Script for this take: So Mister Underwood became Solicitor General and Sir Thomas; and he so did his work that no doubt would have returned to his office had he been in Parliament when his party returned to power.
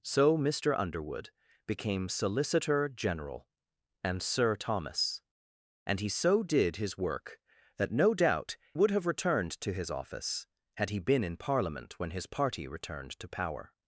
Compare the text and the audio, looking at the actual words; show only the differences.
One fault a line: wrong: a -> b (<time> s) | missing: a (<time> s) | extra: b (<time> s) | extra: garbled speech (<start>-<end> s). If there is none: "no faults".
no faults